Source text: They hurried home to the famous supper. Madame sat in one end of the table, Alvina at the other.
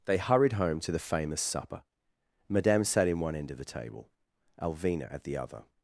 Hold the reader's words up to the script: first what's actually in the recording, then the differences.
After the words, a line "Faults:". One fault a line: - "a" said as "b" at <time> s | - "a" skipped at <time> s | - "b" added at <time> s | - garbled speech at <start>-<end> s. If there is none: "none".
They hurried home to the famous supper. Madame sat in one end of the table, Alvina at the other.
Faults:
none